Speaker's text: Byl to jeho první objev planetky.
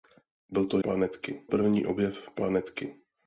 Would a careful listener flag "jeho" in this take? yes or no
yes